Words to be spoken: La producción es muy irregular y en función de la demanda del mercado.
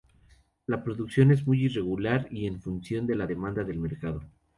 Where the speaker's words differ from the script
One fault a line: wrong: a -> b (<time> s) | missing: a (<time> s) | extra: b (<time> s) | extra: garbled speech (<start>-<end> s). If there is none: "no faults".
no faults